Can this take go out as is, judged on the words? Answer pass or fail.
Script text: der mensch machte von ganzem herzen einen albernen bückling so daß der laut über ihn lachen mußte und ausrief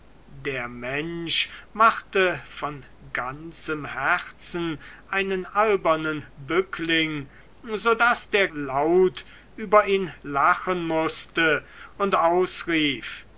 pass